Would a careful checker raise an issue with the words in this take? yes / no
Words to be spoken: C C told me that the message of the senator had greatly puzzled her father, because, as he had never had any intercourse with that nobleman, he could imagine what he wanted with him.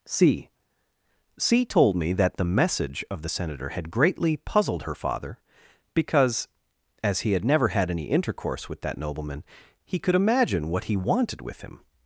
no